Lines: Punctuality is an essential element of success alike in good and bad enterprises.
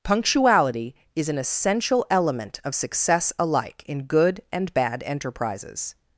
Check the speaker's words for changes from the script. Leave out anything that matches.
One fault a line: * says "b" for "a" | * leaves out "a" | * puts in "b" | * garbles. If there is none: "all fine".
all fine